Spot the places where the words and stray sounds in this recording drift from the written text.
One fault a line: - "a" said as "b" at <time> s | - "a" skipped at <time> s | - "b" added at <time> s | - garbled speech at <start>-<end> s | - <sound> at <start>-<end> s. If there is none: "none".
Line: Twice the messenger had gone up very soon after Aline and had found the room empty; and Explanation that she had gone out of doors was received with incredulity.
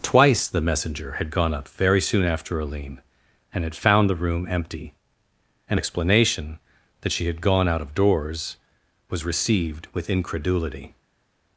none